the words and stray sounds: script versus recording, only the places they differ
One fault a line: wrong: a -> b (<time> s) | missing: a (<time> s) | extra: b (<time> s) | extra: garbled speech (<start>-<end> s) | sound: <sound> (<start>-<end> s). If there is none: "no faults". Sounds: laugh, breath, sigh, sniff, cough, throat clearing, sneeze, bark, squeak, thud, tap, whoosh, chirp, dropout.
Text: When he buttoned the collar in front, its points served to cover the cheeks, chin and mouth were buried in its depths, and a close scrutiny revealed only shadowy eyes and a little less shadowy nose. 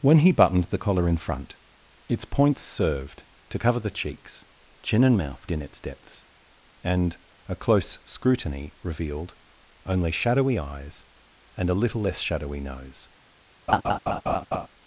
missing: were buried (5.5 s)
sound: laugh (13.7-14.7 s)